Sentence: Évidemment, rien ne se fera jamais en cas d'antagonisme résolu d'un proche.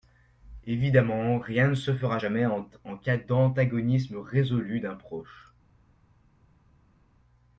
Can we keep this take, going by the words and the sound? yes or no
yes